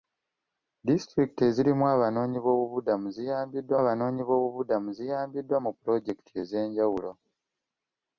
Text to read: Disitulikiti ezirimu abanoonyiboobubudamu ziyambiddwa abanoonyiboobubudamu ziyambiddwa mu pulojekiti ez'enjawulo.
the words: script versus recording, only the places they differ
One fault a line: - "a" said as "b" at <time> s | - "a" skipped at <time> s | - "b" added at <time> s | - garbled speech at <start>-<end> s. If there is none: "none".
none